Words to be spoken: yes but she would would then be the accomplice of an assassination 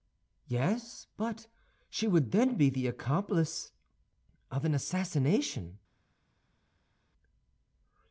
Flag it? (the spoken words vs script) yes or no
yes